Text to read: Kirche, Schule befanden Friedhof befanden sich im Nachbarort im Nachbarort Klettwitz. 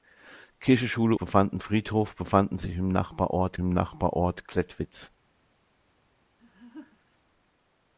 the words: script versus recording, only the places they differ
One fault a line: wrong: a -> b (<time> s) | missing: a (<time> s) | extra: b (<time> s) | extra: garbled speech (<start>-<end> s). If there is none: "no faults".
no faults